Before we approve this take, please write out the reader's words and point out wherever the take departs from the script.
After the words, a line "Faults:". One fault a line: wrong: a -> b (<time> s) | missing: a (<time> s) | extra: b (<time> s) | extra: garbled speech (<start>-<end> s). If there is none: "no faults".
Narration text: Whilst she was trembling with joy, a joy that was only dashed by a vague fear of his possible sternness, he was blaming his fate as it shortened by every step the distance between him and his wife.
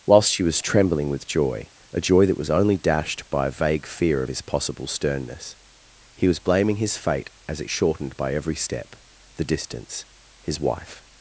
Whilst she was trembling with joy, a joy that was only dashed by a vague fear of his possible sternness, he was blaming his fate as it shortened by every step the distance his wife.
Faults:
missing: between him and (10.0 s)